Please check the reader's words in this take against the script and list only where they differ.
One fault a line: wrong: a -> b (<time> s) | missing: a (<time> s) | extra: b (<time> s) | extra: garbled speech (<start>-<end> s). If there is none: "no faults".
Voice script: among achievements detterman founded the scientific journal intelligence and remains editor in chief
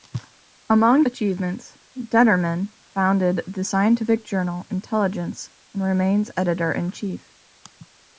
no faults